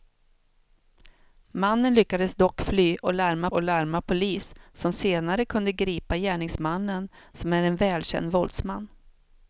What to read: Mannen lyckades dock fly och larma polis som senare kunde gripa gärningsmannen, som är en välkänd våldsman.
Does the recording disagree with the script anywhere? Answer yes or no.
yes